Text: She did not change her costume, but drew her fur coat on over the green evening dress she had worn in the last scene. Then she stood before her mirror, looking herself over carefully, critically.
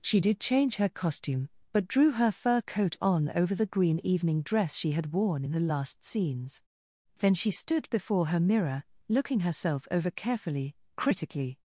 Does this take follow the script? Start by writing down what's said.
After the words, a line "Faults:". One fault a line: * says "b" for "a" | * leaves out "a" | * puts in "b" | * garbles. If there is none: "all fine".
She did change her costume, but drew her fur coat on over the green evening dress she had worn in the last scenes. Then she stood before her mirror, looking herself over carefully, critically.
Faults:
* leaves out "not"
* says "scenes" for "scene"